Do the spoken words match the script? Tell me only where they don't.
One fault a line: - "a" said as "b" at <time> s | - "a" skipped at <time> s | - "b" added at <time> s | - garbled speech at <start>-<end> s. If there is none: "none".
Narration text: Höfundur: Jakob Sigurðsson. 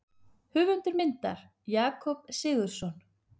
- "myndar" added at 1.0 s